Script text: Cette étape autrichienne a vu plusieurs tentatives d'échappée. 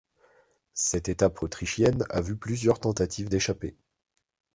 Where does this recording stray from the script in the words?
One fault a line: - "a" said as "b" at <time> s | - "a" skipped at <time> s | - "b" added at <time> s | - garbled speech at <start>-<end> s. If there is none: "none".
none